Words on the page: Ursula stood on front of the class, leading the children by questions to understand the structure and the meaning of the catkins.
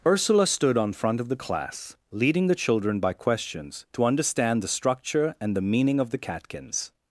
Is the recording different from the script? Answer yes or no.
no